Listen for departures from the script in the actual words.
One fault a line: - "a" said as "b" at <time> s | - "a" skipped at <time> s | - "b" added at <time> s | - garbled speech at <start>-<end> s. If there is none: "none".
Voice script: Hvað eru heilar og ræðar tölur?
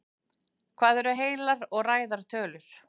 none